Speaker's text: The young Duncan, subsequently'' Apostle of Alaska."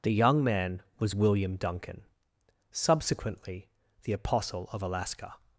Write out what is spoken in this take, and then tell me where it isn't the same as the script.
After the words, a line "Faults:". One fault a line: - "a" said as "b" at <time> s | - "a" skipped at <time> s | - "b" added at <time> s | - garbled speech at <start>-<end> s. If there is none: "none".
The young man was William Duncan, subsequently'' The Apostle of Alaska."
Faults:
- "man was William" added at 0.4 s
- "The" added at 4.0 s